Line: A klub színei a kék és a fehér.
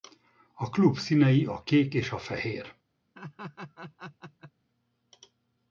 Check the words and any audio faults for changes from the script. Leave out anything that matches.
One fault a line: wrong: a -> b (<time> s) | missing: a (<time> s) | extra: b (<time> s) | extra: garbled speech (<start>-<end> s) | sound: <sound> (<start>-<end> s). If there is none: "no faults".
sound: laugh (3.1-4.5 s)